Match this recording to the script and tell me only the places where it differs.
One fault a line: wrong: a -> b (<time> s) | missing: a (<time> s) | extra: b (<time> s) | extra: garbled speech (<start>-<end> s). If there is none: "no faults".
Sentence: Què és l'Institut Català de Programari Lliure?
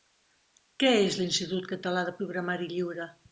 no faults